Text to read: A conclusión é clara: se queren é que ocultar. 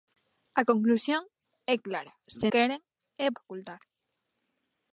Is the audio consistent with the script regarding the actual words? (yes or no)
yes